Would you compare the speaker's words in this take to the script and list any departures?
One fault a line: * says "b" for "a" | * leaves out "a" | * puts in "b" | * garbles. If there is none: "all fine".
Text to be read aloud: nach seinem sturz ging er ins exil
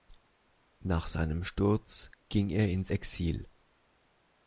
all fine